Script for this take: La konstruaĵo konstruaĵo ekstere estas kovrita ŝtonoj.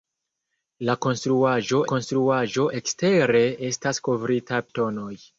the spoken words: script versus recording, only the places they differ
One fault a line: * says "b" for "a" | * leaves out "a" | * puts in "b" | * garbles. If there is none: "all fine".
all fine